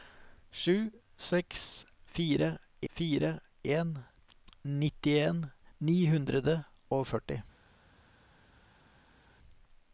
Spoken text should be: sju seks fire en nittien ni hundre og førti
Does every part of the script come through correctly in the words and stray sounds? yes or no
no